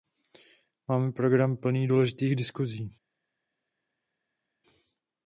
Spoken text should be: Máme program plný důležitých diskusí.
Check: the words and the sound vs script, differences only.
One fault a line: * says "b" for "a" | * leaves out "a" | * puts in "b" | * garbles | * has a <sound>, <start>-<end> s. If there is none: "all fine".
all fine